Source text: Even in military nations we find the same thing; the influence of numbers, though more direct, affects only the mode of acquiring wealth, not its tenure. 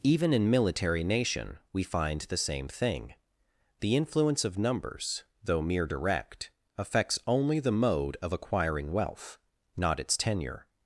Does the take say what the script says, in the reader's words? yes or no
no